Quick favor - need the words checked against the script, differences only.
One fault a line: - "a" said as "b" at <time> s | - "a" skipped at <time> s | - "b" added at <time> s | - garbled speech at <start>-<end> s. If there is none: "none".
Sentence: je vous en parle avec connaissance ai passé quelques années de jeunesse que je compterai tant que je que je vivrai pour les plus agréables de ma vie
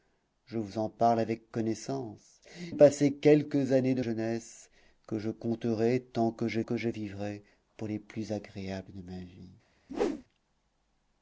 none